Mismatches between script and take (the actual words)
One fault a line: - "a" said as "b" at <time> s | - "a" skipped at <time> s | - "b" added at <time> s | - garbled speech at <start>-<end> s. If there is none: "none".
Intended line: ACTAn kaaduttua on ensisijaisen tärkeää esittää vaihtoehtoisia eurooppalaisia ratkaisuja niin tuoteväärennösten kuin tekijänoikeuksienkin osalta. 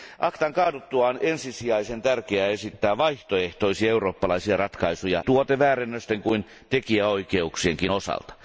- "niin" skipped at 5.2 s